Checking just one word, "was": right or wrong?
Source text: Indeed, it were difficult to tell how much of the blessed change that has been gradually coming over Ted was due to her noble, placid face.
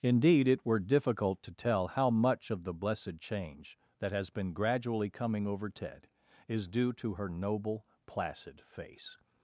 wrong